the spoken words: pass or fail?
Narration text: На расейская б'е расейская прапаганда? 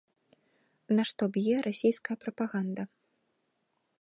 fail